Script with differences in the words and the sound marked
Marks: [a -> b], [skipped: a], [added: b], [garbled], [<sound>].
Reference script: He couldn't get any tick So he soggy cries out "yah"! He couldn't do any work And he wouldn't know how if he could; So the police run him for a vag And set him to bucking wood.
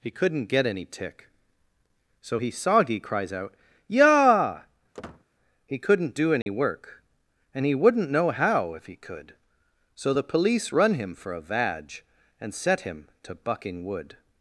He couldn't get any tick So he soggy cries out "yah"! [squeak] He couldn't do any [dropout] work And he wouldn't know how if he could; So the police run him for a vag And set him to bucking wood.